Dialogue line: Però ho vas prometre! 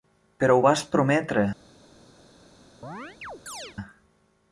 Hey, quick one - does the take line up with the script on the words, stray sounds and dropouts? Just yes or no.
no